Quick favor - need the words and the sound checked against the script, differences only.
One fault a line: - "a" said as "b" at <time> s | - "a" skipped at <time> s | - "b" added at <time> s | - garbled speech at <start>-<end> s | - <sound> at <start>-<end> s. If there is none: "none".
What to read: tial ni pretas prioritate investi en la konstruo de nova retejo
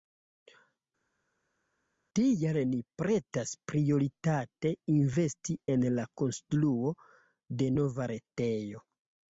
none